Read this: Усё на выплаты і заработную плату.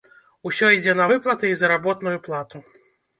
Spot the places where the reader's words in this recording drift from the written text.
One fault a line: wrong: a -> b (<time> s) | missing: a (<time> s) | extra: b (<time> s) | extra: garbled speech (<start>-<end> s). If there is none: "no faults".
extra: ідзе (0.8 s)